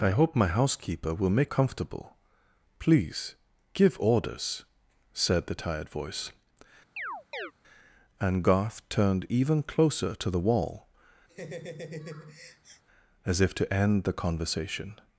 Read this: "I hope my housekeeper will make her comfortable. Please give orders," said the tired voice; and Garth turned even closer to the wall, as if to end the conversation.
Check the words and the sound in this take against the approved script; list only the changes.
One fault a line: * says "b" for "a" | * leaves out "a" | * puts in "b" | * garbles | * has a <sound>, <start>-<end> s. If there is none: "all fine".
* leaves out "her"
* has a chirp, 7.0-7.5 s
* has a laugh, 11.3-12.8 s